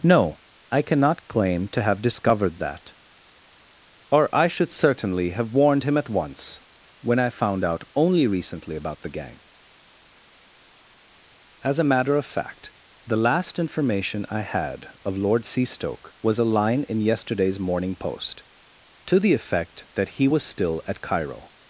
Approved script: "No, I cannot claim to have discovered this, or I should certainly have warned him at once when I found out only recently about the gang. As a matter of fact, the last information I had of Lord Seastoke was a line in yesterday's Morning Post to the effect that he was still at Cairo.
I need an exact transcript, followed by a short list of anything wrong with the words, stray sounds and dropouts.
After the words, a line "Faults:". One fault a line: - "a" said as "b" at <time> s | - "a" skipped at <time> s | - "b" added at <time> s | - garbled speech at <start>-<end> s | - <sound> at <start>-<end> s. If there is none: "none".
"No, I cannot claim to have discovered that, or I should certainly have warned him at once when I found out only recently about the gang. As a matter of fact, the last information I had of Lord Seastoke was a line in yesterday's Morning Post to the effect that he was still at Cairo.
Faults:
- "this" said as "that" at 2.6 s